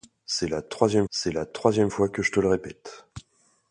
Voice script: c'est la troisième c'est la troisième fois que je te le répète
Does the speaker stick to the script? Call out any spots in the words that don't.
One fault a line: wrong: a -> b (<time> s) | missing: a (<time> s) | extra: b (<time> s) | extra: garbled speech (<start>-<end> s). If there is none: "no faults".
no faults